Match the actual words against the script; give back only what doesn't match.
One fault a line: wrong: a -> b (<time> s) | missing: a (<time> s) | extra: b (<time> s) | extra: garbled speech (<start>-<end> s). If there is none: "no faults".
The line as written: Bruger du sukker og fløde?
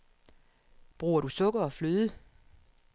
no faults